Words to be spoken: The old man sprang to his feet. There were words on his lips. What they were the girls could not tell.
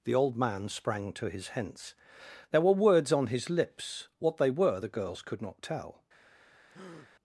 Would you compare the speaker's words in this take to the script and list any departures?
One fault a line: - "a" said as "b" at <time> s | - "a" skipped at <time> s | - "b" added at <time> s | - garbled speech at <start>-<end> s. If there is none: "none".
- "feet" said as "hence" at 1.5 s